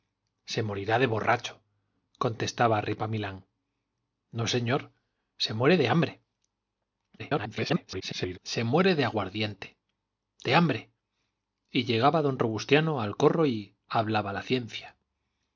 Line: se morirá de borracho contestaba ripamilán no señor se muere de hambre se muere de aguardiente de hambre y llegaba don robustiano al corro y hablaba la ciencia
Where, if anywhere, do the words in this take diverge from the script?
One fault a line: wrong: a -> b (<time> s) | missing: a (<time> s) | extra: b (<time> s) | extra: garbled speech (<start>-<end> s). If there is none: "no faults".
extra: garbled speech (7.2-8.4 s)